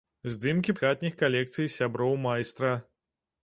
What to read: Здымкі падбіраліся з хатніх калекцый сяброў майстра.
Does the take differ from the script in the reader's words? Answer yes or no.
yes